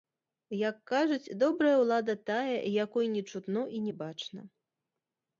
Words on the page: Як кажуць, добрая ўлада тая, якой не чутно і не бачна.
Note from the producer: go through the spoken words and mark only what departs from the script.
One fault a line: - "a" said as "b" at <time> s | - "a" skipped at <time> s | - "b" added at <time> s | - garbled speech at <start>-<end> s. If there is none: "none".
none